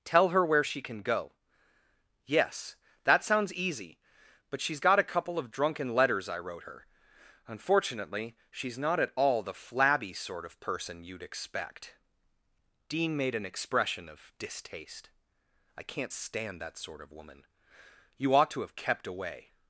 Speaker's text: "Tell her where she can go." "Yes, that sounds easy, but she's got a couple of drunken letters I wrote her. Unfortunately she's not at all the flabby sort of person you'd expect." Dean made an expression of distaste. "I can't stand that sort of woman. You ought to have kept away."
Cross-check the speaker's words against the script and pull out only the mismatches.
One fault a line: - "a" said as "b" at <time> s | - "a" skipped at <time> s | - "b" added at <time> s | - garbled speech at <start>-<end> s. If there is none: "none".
none